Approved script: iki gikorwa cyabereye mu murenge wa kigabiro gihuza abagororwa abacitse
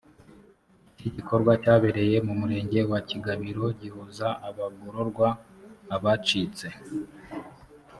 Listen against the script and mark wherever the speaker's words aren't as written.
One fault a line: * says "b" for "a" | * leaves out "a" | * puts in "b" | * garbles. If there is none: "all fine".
all fine